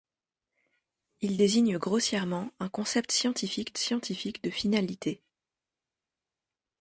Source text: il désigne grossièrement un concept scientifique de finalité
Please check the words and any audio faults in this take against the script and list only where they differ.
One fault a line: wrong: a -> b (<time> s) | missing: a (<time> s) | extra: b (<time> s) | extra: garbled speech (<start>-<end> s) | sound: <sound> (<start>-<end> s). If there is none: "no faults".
extra: scientifique (3.8 s)